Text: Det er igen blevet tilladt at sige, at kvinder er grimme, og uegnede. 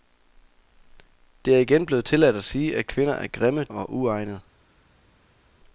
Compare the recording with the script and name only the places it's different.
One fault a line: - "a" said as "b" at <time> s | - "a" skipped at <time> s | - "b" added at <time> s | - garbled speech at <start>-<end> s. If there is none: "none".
none